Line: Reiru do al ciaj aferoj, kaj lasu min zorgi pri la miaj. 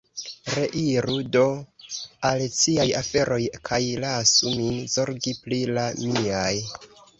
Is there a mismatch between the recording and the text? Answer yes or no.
no